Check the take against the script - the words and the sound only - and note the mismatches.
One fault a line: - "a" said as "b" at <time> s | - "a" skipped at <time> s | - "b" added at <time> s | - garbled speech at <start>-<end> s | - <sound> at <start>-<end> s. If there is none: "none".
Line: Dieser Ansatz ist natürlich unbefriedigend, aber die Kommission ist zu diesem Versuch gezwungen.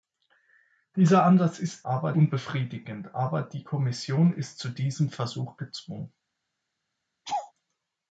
- "natürlich" said as "aber" at 1.8 s
- laugh at 7.2-7.5 s